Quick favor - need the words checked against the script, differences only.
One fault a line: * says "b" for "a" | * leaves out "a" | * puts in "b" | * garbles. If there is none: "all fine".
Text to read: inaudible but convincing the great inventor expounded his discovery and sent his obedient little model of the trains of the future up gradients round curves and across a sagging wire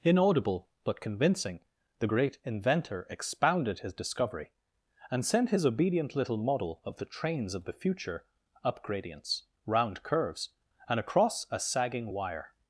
all fine